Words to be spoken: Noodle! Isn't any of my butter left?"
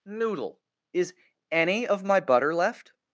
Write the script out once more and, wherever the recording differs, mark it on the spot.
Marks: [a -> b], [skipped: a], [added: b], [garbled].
Noodle! [Isn't -> Is] any of my butter left?"